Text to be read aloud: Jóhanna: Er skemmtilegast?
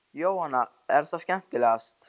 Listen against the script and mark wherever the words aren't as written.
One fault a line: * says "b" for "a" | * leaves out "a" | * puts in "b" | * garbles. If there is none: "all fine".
* puts in "það"